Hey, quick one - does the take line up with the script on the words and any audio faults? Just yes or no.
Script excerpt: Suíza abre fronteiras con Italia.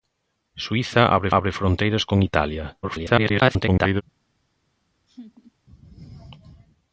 no